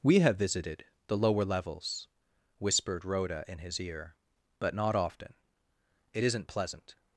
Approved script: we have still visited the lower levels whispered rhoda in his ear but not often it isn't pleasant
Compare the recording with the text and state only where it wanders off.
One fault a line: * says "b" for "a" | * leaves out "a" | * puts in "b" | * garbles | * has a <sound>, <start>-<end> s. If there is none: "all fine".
* leaves out "still"